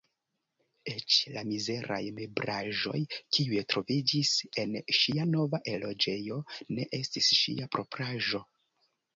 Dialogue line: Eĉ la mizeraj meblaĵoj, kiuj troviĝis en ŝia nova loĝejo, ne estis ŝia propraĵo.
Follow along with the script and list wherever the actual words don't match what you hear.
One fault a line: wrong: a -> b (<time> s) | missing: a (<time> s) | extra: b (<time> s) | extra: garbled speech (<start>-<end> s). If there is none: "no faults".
no faults